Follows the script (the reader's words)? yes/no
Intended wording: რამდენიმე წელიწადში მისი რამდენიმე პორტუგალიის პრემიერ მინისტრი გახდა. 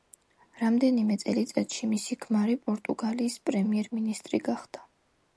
no